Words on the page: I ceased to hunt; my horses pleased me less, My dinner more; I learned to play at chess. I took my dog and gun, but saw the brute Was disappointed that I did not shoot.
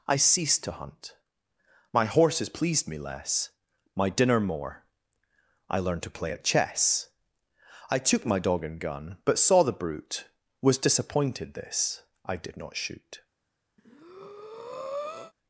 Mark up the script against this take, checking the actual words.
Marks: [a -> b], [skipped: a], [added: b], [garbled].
I ceased to hunt; my horses pleased me less, My dinner more; I learned to play at chess. I took my dog and gun, but saw the brute Was disappointed [that -> this] I did not shoot.